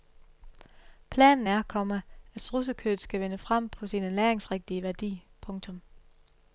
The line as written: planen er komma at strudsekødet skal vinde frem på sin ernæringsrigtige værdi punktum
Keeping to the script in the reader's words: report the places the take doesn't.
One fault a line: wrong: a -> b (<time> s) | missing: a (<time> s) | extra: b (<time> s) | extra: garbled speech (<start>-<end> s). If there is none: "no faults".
no faults